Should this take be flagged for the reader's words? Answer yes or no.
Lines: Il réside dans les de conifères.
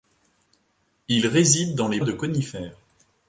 no